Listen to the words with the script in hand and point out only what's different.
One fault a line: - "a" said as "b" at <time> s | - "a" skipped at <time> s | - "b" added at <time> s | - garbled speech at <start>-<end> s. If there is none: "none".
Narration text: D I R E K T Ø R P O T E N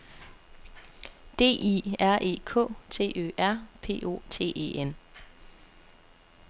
none